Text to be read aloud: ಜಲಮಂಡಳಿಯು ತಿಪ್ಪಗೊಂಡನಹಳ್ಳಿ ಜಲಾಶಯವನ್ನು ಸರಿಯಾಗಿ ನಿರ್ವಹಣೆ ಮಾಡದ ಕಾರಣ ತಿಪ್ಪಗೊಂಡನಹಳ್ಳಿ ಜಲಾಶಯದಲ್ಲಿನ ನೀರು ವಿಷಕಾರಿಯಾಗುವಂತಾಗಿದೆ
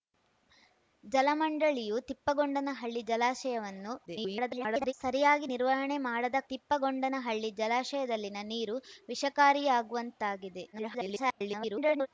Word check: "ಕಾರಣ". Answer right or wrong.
wrong